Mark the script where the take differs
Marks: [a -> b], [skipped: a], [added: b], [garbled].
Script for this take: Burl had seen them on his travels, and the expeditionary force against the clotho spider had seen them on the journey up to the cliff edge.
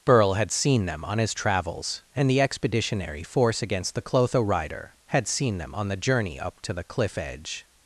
Burl had seen them on his travels, and the expeditionary force against the clotho [spider -> rider] had seen them on the journey up to the cliff edge.